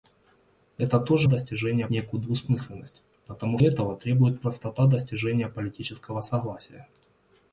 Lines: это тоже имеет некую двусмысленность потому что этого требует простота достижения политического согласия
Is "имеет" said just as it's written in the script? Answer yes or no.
no